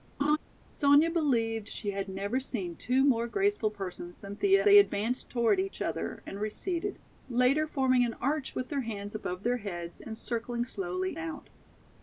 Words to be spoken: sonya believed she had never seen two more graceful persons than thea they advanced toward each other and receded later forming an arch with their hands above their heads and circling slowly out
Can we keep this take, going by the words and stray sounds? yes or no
no